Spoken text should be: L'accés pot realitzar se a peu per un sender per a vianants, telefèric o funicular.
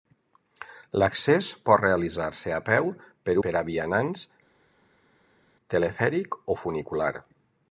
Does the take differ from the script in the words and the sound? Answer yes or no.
yes